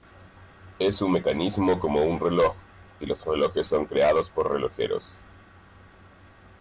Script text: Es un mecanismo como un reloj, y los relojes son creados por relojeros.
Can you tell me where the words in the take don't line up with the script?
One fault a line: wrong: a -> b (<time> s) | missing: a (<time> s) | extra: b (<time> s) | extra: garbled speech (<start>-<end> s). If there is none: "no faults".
no faults